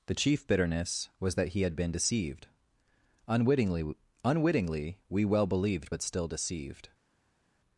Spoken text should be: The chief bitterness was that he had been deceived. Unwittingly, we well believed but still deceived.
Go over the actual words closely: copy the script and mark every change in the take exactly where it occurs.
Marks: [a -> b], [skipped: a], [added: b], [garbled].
The chief bitterness was that he had been deceived. Unwittingly, [added: Unwittingly] we well believed but still deceived.